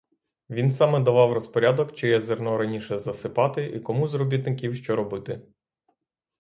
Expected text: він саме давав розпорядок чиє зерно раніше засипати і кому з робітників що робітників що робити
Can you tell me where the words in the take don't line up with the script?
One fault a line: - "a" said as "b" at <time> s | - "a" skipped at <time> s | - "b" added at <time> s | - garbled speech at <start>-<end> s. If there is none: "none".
- "робітників що" skipped at 5.0 s